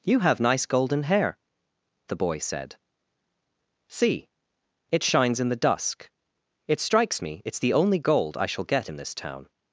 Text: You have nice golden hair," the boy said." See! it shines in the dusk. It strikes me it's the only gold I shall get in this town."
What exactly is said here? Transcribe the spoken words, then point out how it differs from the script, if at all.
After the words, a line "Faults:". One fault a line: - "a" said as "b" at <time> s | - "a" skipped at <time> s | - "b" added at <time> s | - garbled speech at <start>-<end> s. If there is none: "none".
You have nice golden hair," the boy said." See! it shines in the dusk. It strikes me it's the only gold I shall get in this town."
Faults:
none